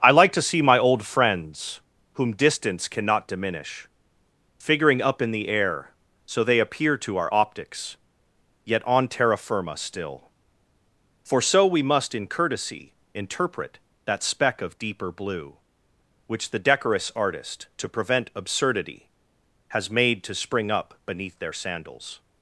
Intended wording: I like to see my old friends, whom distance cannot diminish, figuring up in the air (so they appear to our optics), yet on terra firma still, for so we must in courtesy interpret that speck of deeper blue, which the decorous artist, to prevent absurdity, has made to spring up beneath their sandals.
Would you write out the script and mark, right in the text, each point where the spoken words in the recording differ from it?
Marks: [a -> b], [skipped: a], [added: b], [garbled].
I like to see my old friends, whom distance cannot diminish, figuring up in the air (so they appear to our optics), yet on terra firma still, for so we must in courtesy interpret that speck of deeper blue, which the decorous artist, to prevent absurdity, has made to spring up beneath their sandals.